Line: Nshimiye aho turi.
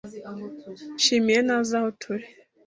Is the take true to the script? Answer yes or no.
no